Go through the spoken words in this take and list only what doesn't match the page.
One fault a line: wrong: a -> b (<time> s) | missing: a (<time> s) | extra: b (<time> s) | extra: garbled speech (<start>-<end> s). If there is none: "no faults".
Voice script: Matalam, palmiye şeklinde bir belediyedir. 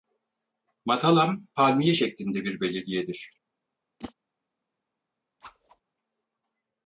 no faults